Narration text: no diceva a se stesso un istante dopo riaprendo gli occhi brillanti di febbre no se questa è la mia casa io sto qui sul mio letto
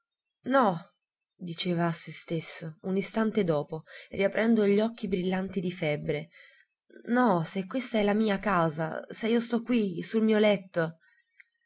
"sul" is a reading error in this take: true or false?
false